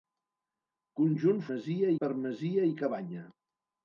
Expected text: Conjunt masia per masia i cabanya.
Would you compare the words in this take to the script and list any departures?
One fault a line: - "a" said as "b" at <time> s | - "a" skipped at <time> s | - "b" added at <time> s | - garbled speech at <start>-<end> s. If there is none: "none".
none